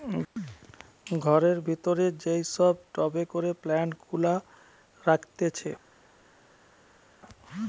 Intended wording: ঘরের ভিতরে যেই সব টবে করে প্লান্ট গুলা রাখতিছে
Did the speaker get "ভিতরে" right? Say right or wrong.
right